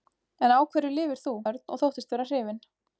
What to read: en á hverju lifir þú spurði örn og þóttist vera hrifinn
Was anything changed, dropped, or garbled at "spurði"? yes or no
yes